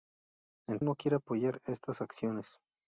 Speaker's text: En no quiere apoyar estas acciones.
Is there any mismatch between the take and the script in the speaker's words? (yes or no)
no